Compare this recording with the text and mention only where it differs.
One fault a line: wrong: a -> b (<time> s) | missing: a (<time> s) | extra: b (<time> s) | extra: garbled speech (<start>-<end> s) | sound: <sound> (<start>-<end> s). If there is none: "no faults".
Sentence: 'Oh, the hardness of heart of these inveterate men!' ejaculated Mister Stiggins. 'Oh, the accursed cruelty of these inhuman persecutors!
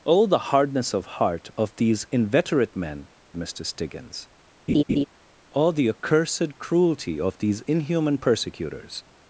missing: ejaculated (3.1 s)
sound: laugh (4.7-5.0 s)